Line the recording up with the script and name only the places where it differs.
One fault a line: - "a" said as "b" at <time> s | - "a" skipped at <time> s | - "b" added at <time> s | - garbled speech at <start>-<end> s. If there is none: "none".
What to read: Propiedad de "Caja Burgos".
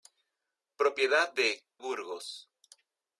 - "Caja" skipped at 1.7 s